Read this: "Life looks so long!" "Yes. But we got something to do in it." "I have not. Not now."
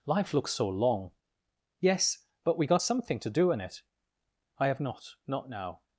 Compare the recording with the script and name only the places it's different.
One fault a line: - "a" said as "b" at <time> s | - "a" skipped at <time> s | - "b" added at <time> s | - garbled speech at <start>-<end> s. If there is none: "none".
none